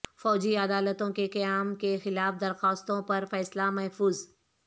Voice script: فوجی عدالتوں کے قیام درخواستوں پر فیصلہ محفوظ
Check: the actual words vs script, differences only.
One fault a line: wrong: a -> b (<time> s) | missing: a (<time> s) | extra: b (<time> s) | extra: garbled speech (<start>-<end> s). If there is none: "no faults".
extra: کے خلاف (1.8 s)